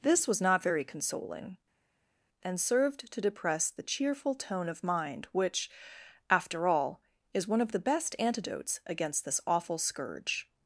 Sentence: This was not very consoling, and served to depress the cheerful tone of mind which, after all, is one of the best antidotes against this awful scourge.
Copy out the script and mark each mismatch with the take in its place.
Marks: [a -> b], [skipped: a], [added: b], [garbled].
This was not very consoling, and served to depress the cheerful tone of mind which, after all, is one of the best antidotes against this awful scourge.